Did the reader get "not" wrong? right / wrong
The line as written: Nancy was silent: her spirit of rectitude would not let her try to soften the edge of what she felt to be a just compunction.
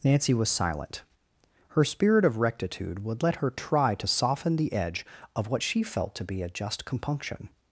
wrong